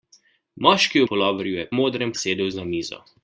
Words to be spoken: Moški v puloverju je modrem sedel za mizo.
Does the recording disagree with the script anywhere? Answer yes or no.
no